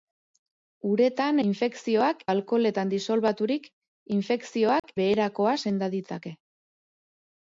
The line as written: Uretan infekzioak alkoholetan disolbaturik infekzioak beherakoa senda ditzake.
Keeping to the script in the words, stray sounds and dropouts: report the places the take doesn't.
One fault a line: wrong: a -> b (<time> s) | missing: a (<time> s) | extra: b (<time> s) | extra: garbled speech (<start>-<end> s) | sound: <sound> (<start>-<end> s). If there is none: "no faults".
sound: dropout (4.8-4.8 s)